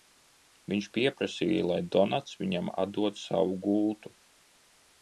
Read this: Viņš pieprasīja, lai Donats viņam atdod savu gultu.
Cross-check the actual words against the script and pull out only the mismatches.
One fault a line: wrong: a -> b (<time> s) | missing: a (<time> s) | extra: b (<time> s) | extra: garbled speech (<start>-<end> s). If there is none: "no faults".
no faults